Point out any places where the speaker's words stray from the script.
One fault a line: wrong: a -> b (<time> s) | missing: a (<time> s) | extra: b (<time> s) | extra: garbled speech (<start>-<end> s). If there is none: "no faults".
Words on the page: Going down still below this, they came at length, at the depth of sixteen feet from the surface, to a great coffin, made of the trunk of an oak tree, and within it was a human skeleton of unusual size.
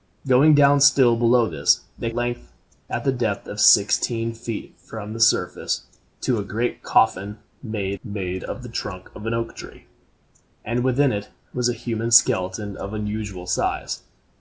missing: came at (2.1 s)
extra: made (8.0 s)